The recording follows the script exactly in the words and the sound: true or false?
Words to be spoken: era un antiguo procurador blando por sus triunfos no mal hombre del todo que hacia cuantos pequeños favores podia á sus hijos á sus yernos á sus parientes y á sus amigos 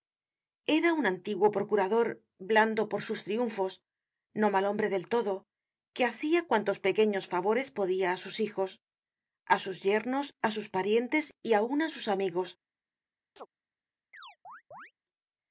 false